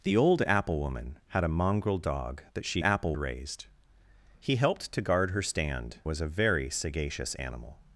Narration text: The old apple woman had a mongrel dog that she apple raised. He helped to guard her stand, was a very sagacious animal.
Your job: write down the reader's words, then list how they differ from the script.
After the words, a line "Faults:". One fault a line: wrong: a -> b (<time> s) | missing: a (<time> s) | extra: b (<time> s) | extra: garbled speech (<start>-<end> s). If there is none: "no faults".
The old apple woman had a mongrel dog that she apple raised. He helped to guard her stand, was a very sagacious animal.
Faults:
no faults